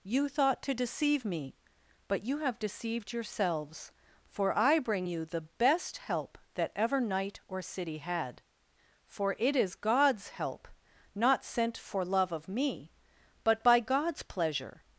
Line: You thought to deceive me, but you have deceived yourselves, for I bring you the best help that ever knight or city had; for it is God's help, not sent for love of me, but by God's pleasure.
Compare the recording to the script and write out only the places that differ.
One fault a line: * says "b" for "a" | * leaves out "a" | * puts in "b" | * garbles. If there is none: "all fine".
all fine